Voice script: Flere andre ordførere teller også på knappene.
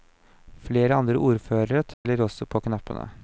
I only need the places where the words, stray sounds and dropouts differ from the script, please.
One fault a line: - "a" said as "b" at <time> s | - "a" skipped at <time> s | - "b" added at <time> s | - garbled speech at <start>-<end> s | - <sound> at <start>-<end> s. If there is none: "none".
- dropout at 1.9-2.0 s